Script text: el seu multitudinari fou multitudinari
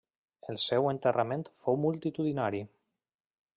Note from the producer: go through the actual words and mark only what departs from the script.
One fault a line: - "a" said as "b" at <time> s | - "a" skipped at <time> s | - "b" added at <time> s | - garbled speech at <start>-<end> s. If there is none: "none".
- "multitudinari" said as "enterrament" at 0.9 s